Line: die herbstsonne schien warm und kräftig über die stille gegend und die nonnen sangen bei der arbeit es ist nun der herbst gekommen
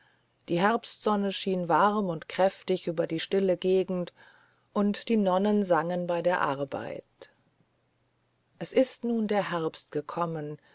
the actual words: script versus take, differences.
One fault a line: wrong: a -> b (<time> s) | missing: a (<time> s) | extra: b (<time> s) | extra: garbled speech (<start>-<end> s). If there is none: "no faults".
no faults